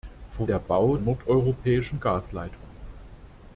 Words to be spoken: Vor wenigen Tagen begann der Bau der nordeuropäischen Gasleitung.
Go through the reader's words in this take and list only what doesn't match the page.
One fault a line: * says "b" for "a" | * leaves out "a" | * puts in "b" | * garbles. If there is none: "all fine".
* leaves out "wenigen Tagen begann"
* leaves out "der"